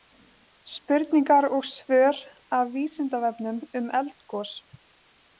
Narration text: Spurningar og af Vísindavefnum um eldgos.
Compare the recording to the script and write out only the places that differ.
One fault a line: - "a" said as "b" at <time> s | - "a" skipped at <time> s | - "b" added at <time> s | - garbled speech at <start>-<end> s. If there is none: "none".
- "svör" added at 1.8 s